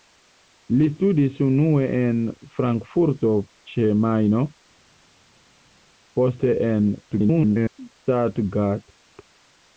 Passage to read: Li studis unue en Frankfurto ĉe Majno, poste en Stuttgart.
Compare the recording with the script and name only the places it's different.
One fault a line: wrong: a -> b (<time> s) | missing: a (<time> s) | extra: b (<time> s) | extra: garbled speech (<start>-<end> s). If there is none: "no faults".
extra: garbled speech (7.1-7.8 s)